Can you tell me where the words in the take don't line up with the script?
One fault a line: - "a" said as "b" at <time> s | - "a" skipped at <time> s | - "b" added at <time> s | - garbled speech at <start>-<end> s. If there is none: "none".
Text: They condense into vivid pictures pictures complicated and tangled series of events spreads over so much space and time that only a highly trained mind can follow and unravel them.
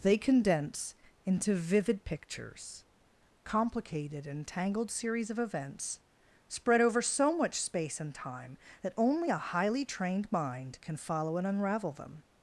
- "pictures" skipped at 2.9 s
- "spreads" said as "spread" at 6.5 s